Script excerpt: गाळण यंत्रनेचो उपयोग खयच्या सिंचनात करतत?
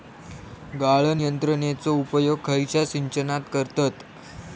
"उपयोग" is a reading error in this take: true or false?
false